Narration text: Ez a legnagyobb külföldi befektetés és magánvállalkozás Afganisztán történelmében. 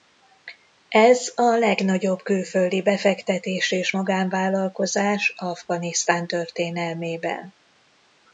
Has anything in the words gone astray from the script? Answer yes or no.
no